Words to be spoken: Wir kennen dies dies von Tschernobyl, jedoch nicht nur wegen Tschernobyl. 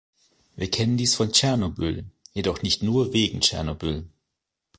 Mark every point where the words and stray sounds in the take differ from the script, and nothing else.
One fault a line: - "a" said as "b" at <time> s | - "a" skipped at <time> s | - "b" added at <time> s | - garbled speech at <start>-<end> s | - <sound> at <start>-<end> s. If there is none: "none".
- "dies" skipped at 1.1 s